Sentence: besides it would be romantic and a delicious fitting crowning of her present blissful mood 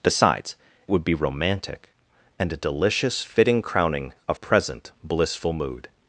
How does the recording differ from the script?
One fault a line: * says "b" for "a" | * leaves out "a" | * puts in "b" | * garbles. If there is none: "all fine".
* leaves out "it"
* leaves out "her"